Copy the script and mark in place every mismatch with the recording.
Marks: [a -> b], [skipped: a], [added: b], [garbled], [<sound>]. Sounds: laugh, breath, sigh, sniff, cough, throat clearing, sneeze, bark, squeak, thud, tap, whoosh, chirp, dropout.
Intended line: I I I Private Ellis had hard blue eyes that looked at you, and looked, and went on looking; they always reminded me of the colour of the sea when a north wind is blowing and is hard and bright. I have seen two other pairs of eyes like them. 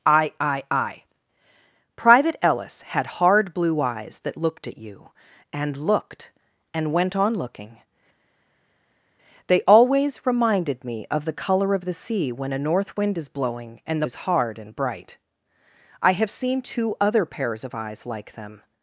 I I I Private Ellis had hard blue eyes that looked at you, and looked, and went on looking; they always reminded me of the colour of the sea when a north wind is blowing and is hard and bright. I have seen two other pairs of eyes like them.